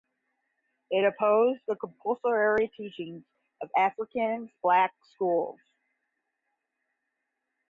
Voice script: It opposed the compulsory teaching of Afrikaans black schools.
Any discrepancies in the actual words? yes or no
no